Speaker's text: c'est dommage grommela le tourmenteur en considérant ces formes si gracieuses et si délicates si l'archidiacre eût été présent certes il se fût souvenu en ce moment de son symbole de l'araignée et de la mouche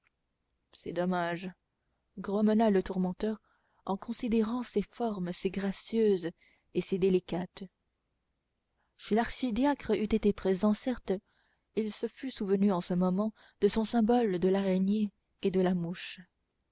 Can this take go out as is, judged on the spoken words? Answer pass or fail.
pass